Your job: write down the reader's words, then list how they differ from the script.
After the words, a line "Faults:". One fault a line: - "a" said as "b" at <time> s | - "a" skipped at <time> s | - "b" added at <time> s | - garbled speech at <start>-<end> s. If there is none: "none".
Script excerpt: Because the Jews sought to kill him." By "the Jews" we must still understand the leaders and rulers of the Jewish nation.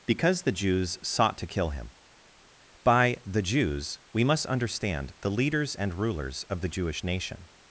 Because the Jews sought to kill him." By "the Jews" we must understand the leaders and rulers of the Jewish nation.
Faults:
- "still" skipped at 4.5 s